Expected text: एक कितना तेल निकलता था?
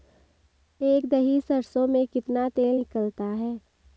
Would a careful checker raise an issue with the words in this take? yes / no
yes